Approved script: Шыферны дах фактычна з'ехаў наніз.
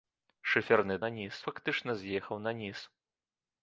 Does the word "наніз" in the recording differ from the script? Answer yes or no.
no